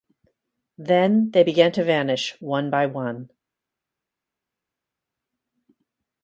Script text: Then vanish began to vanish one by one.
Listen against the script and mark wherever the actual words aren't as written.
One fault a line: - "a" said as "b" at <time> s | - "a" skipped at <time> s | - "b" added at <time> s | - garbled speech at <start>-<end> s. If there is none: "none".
- "vanish" said as "they" at 1.3 s